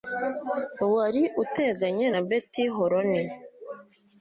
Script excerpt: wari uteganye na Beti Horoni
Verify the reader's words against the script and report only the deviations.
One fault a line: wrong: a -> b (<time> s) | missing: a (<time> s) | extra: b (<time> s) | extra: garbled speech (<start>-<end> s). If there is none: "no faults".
no faults